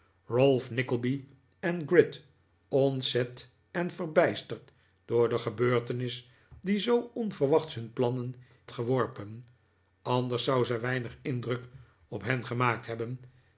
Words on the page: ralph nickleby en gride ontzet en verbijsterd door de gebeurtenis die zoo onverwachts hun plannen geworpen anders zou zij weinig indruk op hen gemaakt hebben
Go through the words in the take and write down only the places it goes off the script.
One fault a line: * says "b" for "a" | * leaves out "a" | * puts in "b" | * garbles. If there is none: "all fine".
all fine